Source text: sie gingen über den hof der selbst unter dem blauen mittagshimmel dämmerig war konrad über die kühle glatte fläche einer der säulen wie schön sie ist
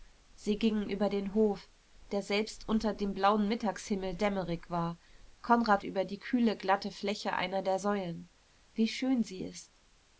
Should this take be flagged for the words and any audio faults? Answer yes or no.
no